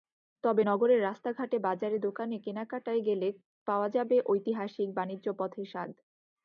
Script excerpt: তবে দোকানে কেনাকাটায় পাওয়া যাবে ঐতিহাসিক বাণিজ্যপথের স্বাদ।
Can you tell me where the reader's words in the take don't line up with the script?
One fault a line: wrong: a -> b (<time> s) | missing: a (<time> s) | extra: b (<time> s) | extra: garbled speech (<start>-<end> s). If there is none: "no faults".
extra: নগরের রাস্তাঘাটে বাজারে (0.6 s)
extra: গেলে (3.0 s)